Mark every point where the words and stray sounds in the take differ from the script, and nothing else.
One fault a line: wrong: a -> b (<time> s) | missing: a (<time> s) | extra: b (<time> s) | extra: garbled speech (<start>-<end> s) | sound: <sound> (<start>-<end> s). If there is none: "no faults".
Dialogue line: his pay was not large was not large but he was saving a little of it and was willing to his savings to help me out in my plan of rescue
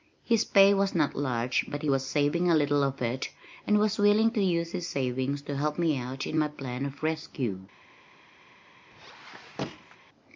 missing: was not large (1.6 s)
extra: use (4.4 s)
sound: squeak (8.9-10.0 s)